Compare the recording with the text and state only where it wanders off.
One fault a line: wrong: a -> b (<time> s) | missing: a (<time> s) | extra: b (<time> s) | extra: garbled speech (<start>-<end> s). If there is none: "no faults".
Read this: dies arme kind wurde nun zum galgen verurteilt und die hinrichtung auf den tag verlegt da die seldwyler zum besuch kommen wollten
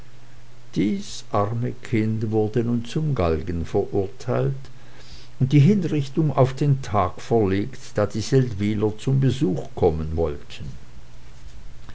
no faults